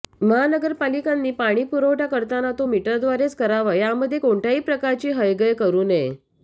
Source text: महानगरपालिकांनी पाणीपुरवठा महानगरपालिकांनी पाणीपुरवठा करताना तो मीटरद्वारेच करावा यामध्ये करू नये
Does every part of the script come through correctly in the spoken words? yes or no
no